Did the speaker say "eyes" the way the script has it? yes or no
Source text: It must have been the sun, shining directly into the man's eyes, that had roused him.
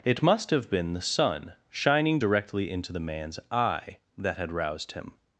no